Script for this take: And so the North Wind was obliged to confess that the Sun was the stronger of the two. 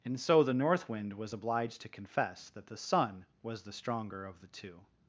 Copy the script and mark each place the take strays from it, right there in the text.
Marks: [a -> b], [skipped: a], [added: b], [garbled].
And so the North Wind was obliged to confess that the Sun was the stronger of the two.